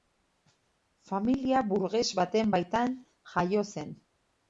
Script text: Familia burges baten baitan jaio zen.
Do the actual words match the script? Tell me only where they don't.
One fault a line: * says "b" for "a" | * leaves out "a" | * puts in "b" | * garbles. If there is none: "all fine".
all fine